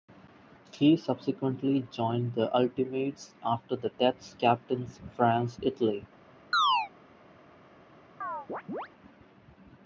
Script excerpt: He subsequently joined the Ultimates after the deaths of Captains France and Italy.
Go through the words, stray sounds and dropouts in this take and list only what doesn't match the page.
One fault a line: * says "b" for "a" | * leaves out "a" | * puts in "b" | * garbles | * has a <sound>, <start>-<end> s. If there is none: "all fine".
* leaves out "of"
* leaves out "and"
* has a chirp, 6.5-6.9 s
* has a chirp, 8.2-8.9 s